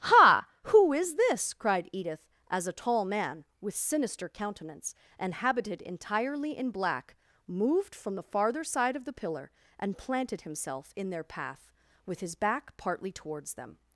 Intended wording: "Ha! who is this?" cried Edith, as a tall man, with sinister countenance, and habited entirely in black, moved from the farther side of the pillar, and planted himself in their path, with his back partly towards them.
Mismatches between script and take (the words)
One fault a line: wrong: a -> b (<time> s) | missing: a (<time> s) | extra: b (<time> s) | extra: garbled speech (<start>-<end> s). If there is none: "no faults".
no faults